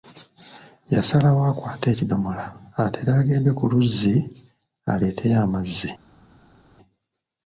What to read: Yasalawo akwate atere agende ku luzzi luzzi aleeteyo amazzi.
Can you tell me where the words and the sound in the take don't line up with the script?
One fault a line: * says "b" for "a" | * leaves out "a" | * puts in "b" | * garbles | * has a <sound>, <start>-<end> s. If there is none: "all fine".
* puts in "ekidomola"
* leaves out "luzzi"